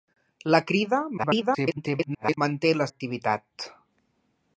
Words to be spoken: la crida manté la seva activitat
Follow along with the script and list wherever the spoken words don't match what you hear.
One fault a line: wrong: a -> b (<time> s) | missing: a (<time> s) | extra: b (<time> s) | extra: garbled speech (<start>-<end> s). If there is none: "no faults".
extra: garbled speech (1.2-2.4 s)
missing: seva (2.9 s)